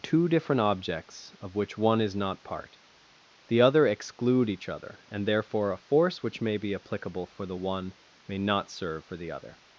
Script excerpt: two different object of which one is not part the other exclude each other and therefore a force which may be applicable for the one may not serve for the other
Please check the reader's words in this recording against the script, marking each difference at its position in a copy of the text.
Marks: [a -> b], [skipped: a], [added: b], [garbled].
two different [object -> objects] of which one is not part the other exclude each other and therefore a force which may be applicable for the one may not serve for the other